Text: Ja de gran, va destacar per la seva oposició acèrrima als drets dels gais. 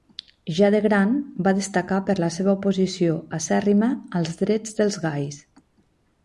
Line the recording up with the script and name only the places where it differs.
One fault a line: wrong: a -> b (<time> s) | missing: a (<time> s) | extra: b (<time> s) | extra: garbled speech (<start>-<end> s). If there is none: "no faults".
no faults